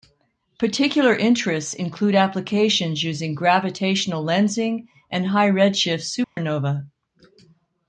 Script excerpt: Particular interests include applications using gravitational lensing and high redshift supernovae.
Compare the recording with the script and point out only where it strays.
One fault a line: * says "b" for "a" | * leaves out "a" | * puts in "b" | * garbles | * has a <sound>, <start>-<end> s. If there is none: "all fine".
* has a dropout, 6.2-6.4 s